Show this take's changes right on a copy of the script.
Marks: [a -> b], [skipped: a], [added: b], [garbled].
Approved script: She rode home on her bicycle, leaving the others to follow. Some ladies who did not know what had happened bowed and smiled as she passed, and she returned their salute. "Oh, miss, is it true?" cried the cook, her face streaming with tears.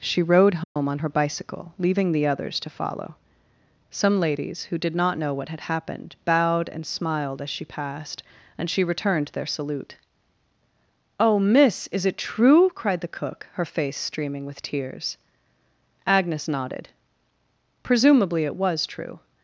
She rode home on her bicycle, leaving the others to follow. Some ladies who did not know what had happened bowed and smiled as she passed, and she returned their salute. "Oh, miss, is it true?" cried the cook, her face streaming with tears. [added: Agnes nodded Presumably it was true]